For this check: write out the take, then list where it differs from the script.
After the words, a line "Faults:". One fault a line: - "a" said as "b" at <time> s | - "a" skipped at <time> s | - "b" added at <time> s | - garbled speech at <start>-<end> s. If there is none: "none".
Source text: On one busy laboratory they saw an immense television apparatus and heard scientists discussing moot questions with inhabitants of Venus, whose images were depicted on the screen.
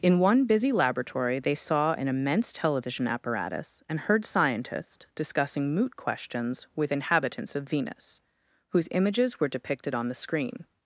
In one busy laboratory they saw an immense television apparatus and heard scientists discussing moot questions with inhabitants of Venus, whose images were depicted on the screen.
Faults:
- "On" said as "In" at 0.0 s